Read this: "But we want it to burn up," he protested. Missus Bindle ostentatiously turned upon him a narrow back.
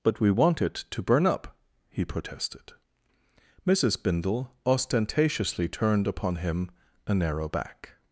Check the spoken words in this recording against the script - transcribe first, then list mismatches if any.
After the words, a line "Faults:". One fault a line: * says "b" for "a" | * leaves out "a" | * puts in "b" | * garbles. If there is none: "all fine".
"But we want it to burn up," he protested. Missus Bindle ostentatiously turned upon him a narrow back.
Faults:
all fine